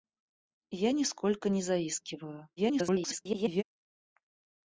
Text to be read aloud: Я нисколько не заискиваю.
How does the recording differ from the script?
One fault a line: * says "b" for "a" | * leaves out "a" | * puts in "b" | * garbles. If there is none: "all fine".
* garbles